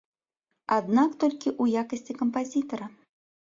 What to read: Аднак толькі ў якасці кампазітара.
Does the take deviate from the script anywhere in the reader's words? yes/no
no